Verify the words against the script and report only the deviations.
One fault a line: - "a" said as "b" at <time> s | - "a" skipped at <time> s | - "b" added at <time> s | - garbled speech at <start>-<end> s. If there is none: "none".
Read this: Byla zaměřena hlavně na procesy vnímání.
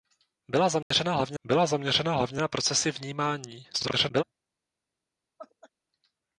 - "byla zaměřena hlavně" added at 1.4 s
- garbled speech at 3.7-4.2 s